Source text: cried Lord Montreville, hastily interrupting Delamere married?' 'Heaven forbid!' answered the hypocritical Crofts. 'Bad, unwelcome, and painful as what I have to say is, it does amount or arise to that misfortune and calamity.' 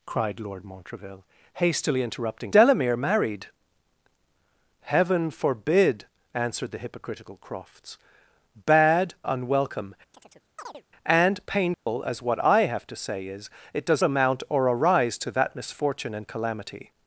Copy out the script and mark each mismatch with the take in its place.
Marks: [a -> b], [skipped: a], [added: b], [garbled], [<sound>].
cried Lord Montreville, hastily interrupting Delamere married?' 'Heaven forbid!' answered the hypocritical Crofts. 'Bad, unwelcome, [chirp] and painful [dropout] as what I have to say is, it does amount or arise to that misfortune and calamity.'